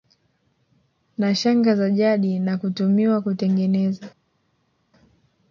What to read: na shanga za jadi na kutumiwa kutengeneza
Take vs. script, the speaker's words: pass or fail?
pass